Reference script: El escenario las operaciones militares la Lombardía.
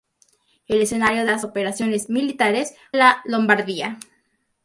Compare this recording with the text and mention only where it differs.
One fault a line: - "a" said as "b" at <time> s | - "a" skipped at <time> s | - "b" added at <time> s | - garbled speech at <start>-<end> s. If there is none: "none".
none